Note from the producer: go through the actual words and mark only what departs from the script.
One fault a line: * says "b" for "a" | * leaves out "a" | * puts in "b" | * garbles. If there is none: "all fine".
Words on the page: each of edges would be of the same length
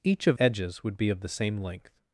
all fine